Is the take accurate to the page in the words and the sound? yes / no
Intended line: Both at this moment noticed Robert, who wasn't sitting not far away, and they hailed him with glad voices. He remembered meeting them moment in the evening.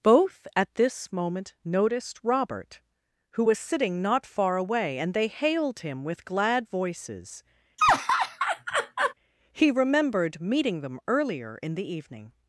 no